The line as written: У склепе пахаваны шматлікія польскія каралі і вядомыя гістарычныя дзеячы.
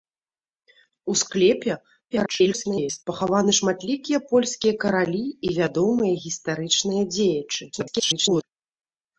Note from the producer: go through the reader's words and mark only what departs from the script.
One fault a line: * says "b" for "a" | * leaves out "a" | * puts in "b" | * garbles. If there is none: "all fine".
* garbles
* garbles